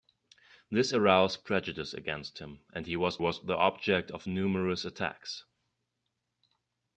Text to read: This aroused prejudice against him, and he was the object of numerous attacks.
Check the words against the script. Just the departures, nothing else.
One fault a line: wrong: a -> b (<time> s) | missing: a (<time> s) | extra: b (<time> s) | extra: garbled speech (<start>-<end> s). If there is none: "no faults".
extra: was (3.2 s)